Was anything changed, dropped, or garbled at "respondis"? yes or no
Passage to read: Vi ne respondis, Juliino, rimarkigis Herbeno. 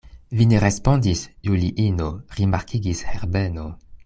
no